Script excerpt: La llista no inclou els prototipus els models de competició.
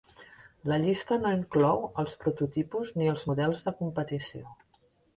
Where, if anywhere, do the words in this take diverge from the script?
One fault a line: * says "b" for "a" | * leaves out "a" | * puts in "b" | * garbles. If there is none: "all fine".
* puts in "ni"